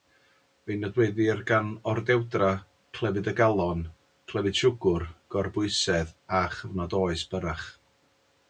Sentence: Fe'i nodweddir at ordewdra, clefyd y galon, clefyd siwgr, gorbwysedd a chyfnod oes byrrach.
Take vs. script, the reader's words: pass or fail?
fail